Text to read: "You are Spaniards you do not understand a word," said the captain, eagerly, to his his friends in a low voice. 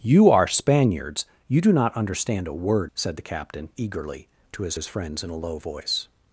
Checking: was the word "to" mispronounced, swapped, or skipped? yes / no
no